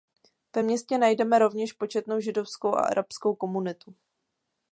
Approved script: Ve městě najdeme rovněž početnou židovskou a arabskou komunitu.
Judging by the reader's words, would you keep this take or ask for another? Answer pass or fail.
pass